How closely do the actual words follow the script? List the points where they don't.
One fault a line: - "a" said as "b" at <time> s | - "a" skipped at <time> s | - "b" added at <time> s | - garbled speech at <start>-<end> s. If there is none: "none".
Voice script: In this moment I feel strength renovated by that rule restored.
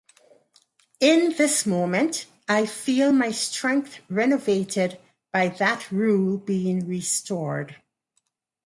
- "my" added at 3.1 s
- "being" added at 6.4 s